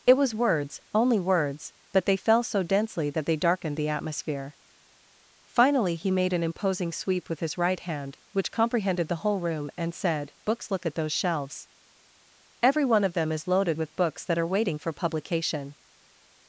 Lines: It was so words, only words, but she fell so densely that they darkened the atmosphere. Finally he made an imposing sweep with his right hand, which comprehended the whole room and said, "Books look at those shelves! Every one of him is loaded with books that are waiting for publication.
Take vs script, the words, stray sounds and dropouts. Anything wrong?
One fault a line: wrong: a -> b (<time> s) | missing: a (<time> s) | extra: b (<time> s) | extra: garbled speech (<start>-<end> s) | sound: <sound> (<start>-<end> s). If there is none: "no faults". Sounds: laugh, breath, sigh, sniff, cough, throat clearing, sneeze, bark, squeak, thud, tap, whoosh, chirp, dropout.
missing: so (0.3 s)
wrong: she -> they (2.0 s)
wrong: him -> them (13.1 s)